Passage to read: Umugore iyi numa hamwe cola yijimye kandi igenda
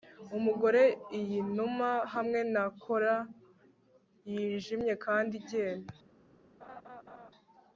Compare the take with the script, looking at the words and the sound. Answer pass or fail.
fail